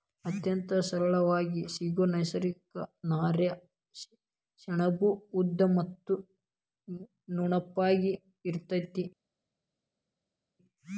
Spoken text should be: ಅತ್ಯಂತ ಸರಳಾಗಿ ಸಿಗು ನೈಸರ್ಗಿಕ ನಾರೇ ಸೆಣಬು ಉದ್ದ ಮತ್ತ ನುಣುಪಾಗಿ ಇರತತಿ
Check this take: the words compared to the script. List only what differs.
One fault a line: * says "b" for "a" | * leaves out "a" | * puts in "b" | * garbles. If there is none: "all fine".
all fine